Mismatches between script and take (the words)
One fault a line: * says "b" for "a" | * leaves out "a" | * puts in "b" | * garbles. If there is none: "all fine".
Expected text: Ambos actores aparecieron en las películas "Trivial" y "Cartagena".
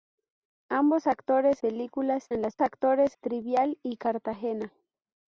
* says "películas" for "aparecieron"
* says "actores" for "películas"